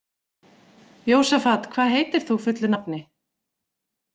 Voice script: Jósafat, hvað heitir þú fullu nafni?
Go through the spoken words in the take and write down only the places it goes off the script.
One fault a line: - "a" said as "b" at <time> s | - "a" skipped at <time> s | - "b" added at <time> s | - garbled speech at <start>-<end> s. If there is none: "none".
none